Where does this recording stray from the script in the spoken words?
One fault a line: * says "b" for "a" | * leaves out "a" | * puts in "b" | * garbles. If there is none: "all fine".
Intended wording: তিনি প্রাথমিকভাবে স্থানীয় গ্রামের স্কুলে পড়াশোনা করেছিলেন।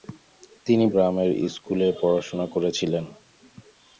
* leaves out "প্রাথমিকভাবে স্থানীয়"